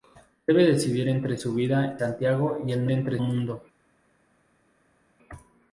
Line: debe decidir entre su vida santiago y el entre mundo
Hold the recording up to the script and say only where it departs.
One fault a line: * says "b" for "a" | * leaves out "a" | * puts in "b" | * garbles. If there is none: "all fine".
all fine